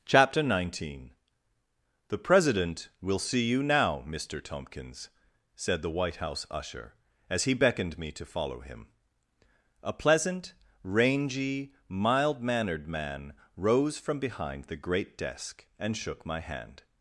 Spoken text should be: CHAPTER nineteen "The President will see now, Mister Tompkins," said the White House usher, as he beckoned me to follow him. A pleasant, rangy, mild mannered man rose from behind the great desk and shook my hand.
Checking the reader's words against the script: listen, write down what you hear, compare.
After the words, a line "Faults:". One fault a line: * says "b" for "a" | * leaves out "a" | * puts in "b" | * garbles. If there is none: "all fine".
CHAPTER nineteen "The President will see you now, Mister Tompkins," said the White House usher, as he beckoned me to follow him. A pleasant, rangy, mild mannered man rose from behind the great desk and shook my hand.
Faults:
* puts in "you"